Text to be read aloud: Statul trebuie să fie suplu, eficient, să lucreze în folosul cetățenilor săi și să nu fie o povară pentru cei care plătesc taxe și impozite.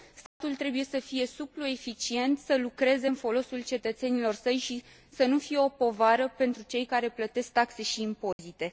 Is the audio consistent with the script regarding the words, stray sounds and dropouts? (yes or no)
no